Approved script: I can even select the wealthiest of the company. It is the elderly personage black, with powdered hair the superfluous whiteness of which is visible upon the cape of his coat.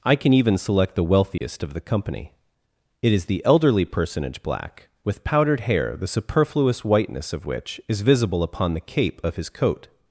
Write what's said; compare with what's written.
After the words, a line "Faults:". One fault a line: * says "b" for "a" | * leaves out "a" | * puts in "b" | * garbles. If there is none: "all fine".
I can even select the wealthiest of the company. It is the elderly personage black, with powdered hair the superfluous whiteness of which is visible upon the cape of his coat.
Faults:
all fine